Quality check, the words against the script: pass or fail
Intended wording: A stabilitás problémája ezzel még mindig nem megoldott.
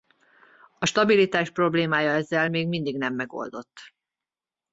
pass